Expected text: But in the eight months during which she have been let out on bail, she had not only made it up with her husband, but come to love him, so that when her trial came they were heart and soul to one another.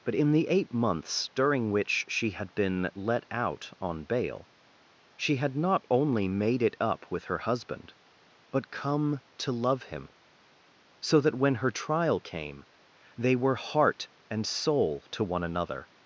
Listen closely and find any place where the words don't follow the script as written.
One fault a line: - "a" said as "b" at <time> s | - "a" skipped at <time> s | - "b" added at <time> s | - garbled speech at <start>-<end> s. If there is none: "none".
- "have" said as "had" at 2.3 s